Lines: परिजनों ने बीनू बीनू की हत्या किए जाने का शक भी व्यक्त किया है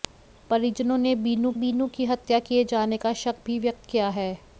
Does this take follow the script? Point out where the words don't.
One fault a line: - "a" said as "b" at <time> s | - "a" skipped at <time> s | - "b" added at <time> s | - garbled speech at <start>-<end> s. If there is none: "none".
none